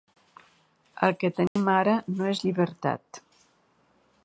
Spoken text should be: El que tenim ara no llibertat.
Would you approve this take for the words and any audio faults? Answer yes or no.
no